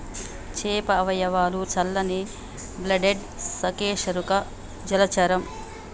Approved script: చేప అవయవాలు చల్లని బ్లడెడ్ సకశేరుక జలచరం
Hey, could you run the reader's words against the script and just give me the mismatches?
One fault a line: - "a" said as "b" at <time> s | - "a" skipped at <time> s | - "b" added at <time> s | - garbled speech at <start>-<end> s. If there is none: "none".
none